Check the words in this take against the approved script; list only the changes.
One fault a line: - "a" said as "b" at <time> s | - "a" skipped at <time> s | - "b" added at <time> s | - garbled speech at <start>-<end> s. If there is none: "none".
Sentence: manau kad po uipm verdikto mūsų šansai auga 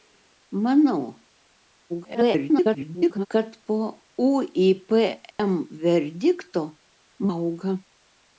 - garbled speech at 1.9-3.3 s
- "mūsų šansai" skipped at 6.6 s